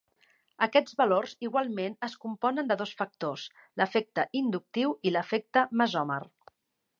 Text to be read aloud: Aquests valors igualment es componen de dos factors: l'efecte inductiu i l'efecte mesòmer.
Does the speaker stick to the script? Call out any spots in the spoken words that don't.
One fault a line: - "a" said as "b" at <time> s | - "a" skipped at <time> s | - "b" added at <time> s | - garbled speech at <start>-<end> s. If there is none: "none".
none